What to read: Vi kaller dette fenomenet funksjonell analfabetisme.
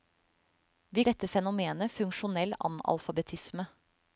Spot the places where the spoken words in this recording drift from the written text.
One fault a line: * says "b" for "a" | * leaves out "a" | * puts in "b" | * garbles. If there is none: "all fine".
* leaves out "kaller"